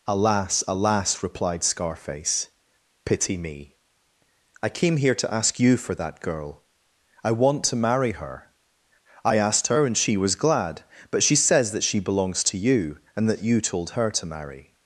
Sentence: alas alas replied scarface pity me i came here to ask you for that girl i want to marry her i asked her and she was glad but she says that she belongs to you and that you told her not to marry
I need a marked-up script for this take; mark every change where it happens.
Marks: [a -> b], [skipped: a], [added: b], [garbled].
alas alas replied scarface pity me i came here to ask you for that girl i want to marry her i asked her and she was glad but she says that she belongs to you and that you told her [skipped: not] to marry